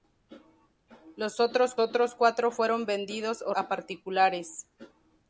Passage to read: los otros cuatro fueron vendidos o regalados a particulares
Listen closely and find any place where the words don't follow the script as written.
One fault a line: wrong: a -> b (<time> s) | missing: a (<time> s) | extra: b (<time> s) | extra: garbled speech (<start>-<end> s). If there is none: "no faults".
extra: otros (1.8 s)
missing: regalados (3.5 s)